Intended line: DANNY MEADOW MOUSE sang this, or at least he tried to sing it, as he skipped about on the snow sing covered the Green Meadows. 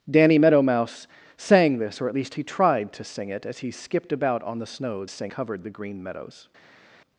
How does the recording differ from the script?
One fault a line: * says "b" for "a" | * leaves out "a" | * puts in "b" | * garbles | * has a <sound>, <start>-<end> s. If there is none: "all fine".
all fine